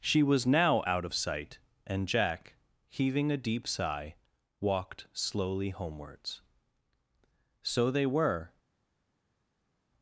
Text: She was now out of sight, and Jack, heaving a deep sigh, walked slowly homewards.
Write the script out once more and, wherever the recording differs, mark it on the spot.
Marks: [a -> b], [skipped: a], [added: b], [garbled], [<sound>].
She was now out of sight, and Jack, heaving a deep sigh, walked slowly homewards. [added: So they were]